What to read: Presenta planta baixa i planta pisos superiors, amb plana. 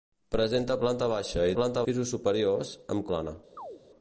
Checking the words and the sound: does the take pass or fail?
fail